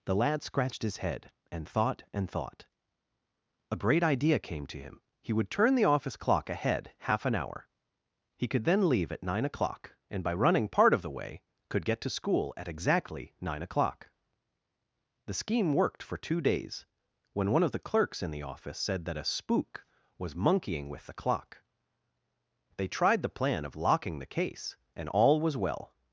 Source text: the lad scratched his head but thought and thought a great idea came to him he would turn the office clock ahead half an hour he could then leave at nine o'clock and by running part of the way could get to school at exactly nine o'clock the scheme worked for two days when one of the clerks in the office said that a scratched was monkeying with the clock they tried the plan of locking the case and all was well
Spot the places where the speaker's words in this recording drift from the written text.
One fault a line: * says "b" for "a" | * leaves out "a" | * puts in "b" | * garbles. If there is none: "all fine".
* says "and" for "but"
* says "spook" for "scratched"